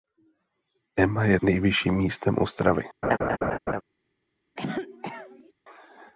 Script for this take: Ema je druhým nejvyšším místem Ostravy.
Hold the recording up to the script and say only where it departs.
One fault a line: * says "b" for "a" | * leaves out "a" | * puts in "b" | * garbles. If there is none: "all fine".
* leaves out "druhým"